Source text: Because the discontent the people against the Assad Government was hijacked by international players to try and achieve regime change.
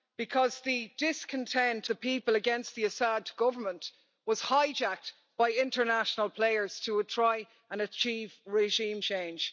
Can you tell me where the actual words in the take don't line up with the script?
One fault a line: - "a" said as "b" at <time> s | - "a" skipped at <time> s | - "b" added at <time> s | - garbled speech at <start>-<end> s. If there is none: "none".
none